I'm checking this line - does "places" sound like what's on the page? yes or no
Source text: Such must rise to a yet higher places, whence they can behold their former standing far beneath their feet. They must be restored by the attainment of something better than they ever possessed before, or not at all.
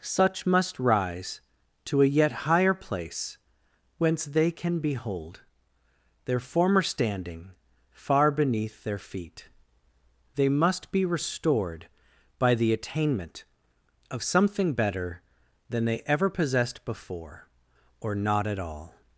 no